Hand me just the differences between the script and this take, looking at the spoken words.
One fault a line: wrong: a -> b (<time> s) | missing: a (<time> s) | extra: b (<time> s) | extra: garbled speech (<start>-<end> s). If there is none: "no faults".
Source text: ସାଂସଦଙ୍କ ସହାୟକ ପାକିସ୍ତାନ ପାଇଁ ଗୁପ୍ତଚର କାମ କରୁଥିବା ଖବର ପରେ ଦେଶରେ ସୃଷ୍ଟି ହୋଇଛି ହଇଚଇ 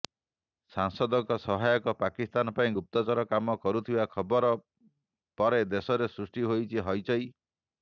no faults